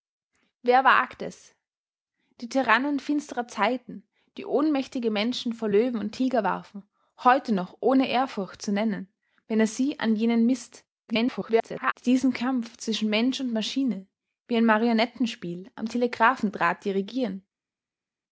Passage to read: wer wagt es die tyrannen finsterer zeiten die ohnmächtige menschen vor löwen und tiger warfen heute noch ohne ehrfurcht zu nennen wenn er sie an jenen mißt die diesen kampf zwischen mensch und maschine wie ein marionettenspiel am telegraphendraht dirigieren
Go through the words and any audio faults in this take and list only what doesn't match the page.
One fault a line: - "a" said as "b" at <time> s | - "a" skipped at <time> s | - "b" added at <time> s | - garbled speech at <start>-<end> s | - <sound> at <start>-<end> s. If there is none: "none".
- garbled speech at 11.1-11.9 s